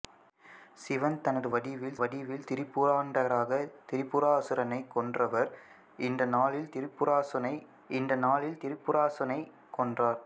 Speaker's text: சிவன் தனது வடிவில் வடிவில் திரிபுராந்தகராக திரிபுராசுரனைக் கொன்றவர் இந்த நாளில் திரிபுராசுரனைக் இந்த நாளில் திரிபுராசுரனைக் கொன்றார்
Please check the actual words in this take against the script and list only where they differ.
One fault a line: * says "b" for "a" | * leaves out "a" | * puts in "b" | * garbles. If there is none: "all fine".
all fine